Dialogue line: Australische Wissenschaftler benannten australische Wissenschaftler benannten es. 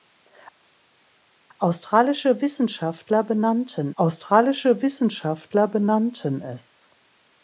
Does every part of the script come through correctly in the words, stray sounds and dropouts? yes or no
yes